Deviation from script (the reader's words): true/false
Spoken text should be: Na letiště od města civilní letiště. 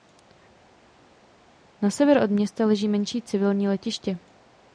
true